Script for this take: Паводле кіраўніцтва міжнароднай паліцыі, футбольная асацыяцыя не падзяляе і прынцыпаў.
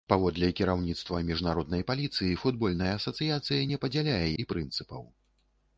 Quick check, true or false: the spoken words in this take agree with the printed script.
true